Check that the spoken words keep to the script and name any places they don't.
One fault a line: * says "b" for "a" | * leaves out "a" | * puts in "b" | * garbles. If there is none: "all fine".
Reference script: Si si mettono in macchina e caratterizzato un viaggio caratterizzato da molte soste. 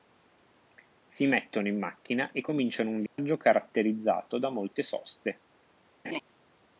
* leaves out "si"
* says "cominciano" for "caratterizzato"